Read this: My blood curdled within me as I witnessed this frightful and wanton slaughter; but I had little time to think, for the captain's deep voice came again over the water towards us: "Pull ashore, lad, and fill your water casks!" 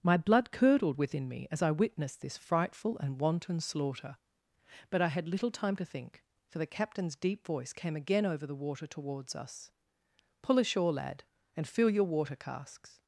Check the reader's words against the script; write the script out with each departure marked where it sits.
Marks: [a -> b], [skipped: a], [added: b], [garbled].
My blood curdled within me as I witnessed this frightful and wanton slaughter; but I had little time to think, for the captain's deep voice came again over the water towards us: "Pull ashore, lad, and fill your water casks!"